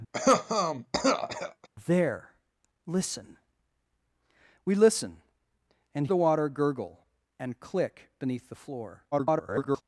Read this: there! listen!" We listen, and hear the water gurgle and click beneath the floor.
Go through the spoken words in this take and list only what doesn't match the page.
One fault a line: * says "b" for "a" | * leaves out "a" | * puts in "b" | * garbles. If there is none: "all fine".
* leaves out "hear"
* garbles